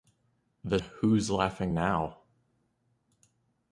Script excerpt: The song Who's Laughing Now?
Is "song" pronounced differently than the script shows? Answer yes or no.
yes